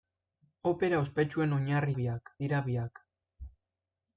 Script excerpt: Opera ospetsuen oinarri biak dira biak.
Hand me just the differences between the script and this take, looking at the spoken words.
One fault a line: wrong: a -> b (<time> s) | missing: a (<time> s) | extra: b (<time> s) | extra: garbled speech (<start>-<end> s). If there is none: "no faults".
no faults